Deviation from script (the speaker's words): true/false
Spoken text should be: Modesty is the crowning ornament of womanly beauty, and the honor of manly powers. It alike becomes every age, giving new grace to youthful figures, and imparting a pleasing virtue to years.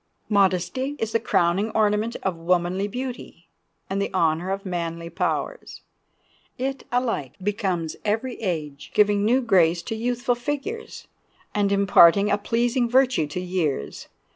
false